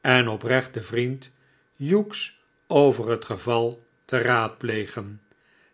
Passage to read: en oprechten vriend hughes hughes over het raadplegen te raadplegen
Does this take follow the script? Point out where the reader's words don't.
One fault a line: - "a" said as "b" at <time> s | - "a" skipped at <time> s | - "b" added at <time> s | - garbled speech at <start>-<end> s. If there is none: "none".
- "hughes" skipped at 2.4 s
- "raadplegen" said as "geval" at 3.2 s